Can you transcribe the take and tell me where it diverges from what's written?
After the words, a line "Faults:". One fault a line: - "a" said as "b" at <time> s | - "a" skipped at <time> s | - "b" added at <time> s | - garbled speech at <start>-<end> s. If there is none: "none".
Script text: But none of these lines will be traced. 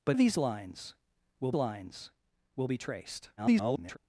But of these lines will lines will be traced. [garbled]
Faults:
- "none" skipped at 0.2 s
- "lines will" added at 1.5 s
- garbled speech at 3.4-4.0 s